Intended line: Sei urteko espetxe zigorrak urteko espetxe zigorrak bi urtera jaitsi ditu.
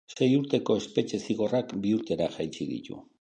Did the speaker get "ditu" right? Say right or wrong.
right